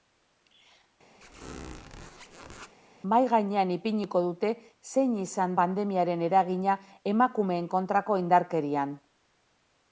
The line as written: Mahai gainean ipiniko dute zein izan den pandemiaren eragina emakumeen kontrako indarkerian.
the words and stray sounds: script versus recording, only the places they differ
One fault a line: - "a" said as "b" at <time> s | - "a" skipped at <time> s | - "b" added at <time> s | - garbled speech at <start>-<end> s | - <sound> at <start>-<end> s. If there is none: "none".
- squeak at 1.2-2.7 s
- "den" skipped at 5.6 s